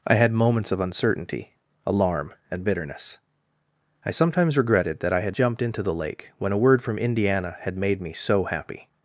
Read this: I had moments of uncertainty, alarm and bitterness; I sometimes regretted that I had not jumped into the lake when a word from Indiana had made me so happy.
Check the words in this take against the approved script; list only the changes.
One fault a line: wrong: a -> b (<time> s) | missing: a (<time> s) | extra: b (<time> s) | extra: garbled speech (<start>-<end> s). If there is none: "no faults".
missing: not (5.4 s)